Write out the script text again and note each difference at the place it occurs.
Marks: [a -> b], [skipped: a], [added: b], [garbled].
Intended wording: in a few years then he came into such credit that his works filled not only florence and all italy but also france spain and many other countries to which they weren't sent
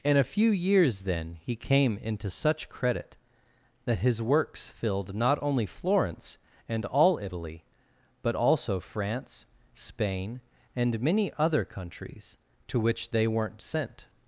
in a few years then he came into such credit that his works filled not only florence and all italy but also france spain and many other countries to which they weren't sent